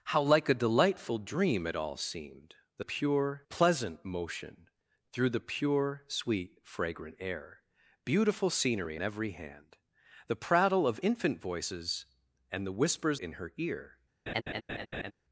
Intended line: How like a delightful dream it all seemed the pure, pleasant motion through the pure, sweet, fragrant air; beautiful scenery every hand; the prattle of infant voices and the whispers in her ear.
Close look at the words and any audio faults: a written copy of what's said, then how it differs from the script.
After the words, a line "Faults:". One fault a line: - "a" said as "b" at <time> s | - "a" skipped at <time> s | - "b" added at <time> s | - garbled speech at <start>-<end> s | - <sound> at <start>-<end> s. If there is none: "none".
How like a delightful dream it all seemed the pure, pleasant motion through the pure, sweet, fragrant air; beautiful scenery every hand; the prattle of infant voices and the whispers in her ear.
Faults:
- laugh at 14.3-15.1 s